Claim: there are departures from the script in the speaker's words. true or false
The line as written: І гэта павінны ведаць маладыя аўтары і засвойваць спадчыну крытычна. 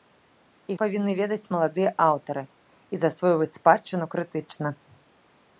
true